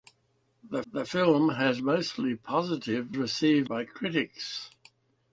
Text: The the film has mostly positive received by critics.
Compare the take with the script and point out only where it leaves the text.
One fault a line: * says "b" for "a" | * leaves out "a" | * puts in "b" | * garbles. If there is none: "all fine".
all fine